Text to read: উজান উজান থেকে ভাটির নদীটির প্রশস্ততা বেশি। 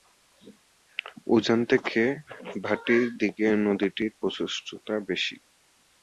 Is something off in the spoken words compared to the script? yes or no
yes